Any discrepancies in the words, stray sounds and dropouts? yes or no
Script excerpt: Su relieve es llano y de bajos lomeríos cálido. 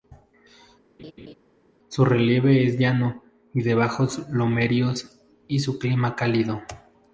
yes